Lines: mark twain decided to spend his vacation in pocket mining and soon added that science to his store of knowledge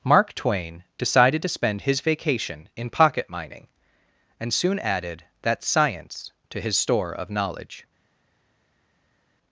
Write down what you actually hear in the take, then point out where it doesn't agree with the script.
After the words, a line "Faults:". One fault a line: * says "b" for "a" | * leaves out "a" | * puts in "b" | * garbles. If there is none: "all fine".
mark twain decided to spend his vacation in pocket mining and soon added that science to his store of knowledge
Faults:
all fine